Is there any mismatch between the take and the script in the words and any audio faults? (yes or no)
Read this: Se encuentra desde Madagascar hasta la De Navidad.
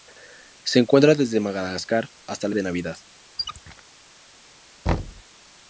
yes